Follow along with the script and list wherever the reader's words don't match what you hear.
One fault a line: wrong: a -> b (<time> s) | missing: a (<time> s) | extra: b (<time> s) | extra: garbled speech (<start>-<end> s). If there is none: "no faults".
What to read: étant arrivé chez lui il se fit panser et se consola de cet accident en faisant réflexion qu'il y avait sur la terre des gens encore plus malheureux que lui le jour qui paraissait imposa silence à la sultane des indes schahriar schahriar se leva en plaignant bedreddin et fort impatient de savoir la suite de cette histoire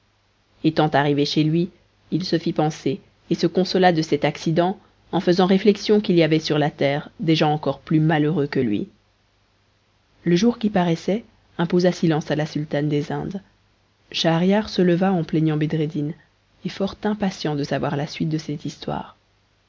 missing: schahriar (14.7 s)